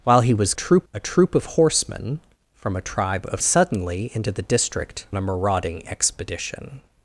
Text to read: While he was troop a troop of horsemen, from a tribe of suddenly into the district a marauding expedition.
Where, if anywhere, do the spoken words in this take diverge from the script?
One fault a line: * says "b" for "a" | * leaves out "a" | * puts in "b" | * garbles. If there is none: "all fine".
all fine